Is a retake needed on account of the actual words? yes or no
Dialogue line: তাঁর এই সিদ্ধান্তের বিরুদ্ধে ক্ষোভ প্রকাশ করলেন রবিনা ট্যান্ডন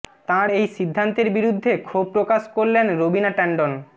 no